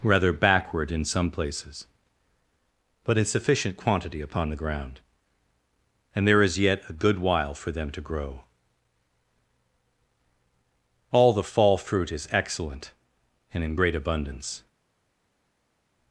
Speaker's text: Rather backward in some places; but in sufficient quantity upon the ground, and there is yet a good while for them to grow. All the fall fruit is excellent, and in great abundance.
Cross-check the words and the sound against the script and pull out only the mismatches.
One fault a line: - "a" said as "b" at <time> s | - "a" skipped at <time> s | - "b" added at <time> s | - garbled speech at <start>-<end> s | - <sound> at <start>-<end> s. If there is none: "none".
none